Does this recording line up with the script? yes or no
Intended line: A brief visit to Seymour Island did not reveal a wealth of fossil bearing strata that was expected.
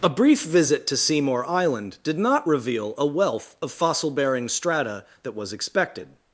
yes